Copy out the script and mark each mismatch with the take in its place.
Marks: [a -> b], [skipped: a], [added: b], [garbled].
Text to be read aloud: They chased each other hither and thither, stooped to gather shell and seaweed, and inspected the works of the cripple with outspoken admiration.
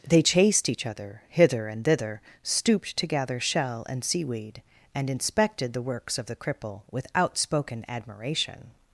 They chased each other hither and thither, stooped to gather shell and seaweed, and inspected the works of the cripple with outspoken admiration.